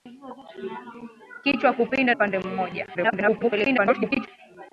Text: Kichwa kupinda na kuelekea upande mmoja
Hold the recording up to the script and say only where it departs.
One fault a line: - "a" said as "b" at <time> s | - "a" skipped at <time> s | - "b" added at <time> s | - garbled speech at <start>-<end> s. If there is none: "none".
- "na kuelekea" skipped at 2.1 s
- garbled speech at 2.9-4.3 s